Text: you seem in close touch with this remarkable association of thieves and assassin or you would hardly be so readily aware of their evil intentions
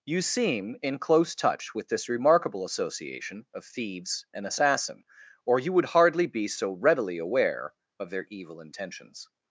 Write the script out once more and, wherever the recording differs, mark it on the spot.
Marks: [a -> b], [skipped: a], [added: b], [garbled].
you seem in close touch with this remarkable association of thieves and assassin or you would hardly be so readily aware of their evil intentions